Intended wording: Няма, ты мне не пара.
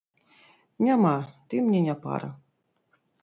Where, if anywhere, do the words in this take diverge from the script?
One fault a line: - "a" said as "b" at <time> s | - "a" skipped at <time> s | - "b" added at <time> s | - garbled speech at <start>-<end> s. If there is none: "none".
none